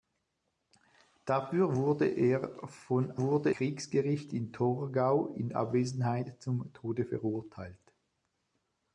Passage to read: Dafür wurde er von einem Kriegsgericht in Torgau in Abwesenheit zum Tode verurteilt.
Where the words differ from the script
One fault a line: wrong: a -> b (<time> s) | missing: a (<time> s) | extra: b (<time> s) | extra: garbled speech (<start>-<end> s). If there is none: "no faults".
wrong: einem -> wurde (3.2 s)